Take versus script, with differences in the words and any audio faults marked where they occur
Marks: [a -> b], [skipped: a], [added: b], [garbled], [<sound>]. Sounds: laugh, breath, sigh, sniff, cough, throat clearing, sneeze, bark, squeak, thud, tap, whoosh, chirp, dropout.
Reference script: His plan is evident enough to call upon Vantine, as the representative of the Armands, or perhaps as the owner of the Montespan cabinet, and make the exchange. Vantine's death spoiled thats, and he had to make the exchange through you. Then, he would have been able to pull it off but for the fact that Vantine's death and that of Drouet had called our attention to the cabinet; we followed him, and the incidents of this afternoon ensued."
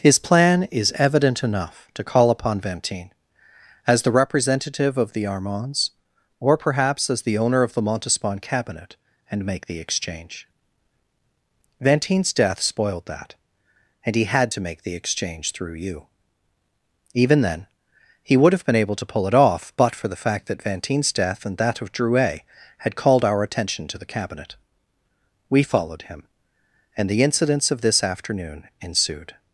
His plan is evident enough to call upon Vantine, as the representative of the Armands, or perhaps as the owner of the Montespan cabinet, and make the exchange. Vantine's death spoiled [thats, -> that] and he had to make the exchange through you. [added: Even] Then, he would have been able to pull it off but for the fact that Vantine's death and that of Drouet had called our attention to the cabinet; we followed him, and the incidents of this afternoon ensued."